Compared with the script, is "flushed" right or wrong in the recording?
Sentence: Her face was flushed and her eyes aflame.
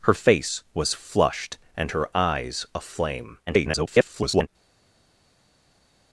right